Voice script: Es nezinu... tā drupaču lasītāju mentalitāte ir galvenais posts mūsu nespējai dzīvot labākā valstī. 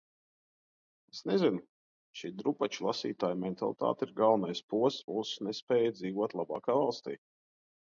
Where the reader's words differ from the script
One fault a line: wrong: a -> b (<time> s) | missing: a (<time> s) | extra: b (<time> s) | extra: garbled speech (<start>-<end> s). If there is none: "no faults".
wrong: tā -> šī (2.2 s)